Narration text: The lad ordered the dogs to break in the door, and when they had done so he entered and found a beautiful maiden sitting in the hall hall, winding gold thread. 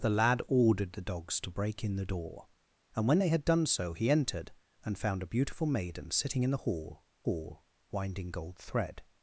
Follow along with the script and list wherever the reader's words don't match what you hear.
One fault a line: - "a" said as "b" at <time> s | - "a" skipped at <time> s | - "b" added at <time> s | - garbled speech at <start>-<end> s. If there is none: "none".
none